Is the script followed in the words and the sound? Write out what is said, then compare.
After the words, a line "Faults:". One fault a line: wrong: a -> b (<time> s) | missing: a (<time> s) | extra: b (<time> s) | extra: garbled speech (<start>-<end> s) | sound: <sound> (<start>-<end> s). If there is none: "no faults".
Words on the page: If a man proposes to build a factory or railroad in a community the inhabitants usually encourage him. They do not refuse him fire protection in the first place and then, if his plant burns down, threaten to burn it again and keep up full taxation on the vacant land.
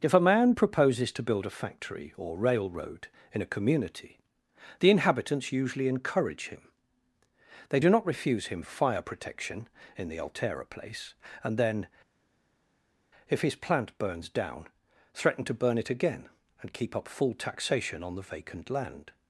If a man proposes to build a factory or railroad in a community the inhabitants usually encourage him. They do not refuse him fire protection in the altera place and then, if his plant burns down, threaten to burn it again and keep up full taxation on the vacant land.
Faults:
wrong: first -> altera (10.2 s)